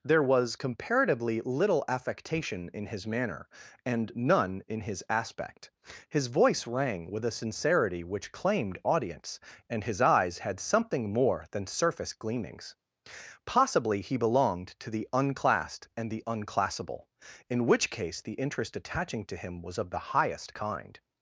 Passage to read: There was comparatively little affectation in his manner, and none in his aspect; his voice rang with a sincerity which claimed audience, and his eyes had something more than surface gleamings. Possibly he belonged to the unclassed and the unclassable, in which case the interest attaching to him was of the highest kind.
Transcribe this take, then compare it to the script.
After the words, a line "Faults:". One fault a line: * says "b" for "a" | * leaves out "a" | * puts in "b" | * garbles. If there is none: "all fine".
There was comparatively little affectation in his manner, and none in his aspect; his voice rang with a sincerity which claimed audience, and his eyes had something more than surface gleamings. Possibly he belonged to the unclassed and the unclassable, in which case the interest attaching to him was of the highest kind.
Faults:
all fine